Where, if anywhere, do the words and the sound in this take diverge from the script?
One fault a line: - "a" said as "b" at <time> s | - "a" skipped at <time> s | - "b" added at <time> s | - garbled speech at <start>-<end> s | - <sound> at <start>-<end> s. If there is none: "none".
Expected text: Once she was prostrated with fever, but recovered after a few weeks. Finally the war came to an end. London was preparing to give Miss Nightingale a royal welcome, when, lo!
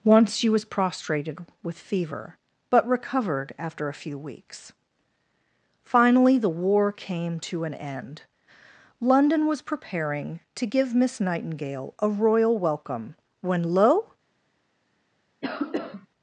- cough at 15.4-16.1 s